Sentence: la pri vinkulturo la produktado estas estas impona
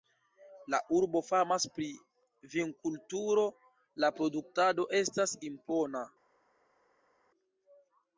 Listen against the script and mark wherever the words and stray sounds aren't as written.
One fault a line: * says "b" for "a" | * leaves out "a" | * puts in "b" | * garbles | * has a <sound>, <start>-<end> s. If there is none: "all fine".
* puts in "urbo famas"
* leaves out "estas"